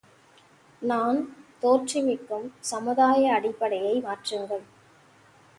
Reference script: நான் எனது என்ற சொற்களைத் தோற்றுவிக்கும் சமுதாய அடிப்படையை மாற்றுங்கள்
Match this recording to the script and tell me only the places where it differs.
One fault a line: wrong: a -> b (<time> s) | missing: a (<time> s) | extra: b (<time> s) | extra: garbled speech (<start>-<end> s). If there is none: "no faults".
missing: எனது என்ற சொற்களைத் (1.2 s)